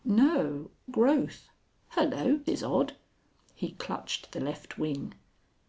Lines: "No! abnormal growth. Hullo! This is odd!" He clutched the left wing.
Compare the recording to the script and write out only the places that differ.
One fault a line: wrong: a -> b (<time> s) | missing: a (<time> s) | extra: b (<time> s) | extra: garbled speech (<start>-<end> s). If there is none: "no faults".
missing: abnormal (0.7 s)
missing: This (2.4 s)